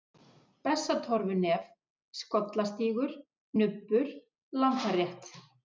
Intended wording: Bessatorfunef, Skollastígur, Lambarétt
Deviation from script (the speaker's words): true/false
true